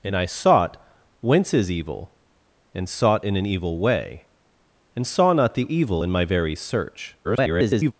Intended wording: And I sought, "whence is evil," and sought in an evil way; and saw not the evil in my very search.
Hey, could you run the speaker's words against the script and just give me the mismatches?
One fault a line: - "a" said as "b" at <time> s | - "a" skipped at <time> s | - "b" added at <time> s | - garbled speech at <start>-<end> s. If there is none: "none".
- garbled speech at 7.2-7.9 s